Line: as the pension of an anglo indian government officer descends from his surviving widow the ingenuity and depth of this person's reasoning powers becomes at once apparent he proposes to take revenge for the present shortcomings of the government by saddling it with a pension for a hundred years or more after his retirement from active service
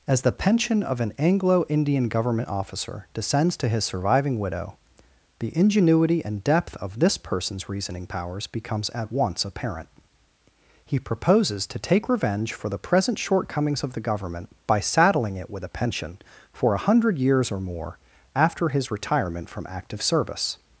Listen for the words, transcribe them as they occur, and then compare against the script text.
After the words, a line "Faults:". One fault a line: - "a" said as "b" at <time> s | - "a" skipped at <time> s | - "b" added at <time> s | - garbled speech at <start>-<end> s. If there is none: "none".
as the pension of an anglo indian government officer descends to his surviving widow the ingenuity and depth of this person's reasoning powers becomes at once apparent he proposes to take revenge for the present shortcomings of the government by saddling it with a pension for a hundred years or more after his retirement from active service
Faults:
- "from" said as "to" at 3.6 s